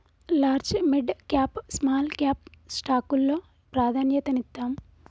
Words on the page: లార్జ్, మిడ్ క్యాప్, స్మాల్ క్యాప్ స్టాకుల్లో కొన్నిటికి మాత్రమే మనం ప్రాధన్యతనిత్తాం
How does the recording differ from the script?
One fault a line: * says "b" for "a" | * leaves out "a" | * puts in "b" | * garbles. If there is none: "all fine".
* leaves out "కొన్నిటికి మాత్రమే మనం"